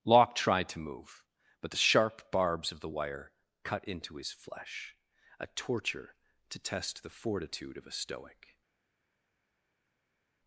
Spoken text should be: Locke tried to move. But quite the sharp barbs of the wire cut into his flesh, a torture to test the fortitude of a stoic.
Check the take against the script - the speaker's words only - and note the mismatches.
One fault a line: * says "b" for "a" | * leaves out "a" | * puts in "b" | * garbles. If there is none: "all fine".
* leaves out "quite"